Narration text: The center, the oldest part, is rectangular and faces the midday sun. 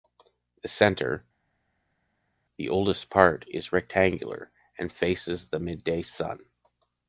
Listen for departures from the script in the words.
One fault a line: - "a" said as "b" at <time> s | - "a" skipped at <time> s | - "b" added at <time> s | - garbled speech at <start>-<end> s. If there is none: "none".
none